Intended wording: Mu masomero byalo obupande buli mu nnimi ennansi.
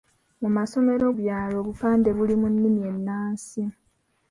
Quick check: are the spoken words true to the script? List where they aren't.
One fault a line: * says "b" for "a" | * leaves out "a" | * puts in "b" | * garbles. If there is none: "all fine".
all fine